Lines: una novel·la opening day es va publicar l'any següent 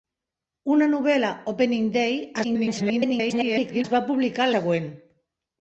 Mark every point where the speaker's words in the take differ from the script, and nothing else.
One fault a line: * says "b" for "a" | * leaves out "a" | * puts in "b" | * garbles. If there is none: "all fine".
* garbles
* leaves out "l'any"